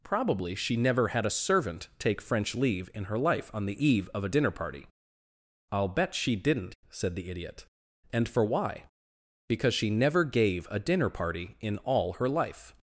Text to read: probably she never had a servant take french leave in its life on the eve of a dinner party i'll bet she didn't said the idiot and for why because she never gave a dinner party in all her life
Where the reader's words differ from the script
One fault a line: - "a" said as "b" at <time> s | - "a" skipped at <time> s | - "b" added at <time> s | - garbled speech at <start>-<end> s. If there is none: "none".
- "its" said as "her" at 3.0 s